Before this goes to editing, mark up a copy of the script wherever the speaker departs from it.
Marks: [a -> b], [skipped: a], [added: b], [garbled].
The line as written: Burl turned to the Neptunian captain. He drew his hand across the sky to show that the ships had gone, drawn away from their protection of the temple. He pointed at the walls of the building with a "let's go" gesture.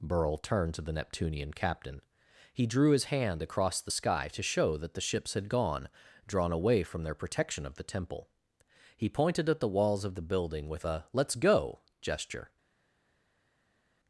Burl turned to the Neptunian captain. He drew his hand across the sky to show that the ships had gone, drawn away from their protection of the temple. He pointed at the walls of the building with a "let's go" gesture.